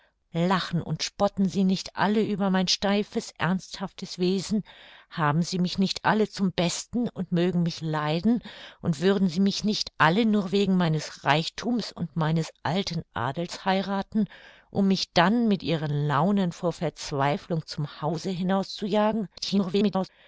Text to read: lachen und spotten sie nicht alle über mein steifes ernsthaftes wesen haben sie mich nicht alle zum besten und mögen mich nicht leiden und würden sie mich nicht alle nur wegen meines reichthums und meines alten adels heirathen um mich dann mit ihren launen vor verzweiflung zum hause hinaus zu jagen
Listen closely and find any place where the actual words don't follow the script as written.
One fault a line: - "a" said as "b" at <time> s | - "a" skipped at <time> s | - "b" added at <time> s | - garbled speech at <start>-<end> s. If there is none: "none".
- "nicht" skipped at 7.8 s
- garbled speech at 19.4-20.1 s